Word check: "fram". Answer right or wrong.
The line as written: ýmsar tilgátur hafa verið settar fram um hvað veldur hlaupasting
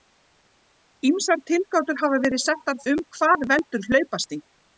wrong